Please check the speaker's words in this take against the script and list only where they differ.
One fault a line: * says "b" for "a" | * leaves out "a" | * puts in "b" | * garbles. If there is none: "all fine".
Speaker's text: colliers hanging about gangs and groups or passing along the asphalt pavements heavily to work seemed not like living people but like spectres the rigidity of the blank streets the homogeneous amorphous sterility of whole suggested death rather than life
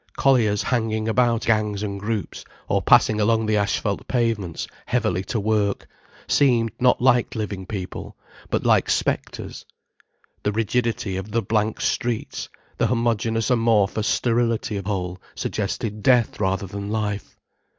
all fine